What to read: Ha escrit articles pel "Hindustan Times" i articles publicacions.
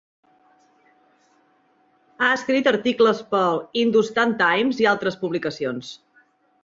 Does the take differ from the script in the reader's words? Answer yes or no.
yes